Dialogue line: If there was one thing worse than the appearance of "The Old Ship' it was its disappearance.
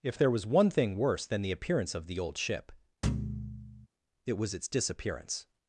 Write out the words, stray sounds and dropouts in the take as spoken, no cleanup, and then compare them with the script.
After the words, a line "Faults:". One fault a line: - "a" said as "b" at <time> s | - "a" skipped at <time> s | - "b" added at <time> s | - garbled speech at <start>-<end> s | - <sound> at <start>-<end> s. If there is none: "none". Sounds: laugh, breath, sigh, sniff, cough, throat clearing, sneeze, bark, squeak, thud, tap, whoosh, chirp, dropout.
If there was one thing worse than the appearance of "The Old Ship' it was its disappearance.
Faults:
- thud at 3.0-3.9 s